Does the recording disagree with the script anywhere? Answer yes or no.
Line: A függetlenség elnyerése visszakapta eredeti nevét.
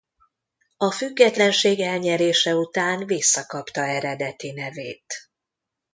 yes